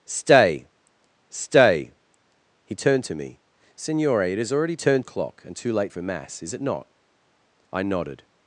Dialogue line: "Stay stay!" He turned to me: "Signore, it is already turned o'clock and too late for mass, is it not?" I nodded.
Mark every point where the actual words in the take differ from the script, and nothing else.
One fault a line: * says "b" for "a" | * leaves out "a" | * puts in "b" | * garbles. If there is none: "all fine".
all fine